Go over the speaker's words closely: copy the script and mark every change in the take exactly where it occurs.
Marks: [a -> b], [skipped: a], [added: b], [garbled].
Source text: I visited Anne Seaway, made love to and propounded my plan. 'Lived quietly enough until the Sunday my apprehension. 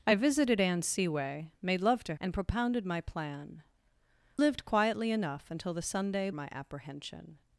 I visited Anne Seaway, made love to and propounded my plan. 'Lived quietly enough until the Sunday my apprehension.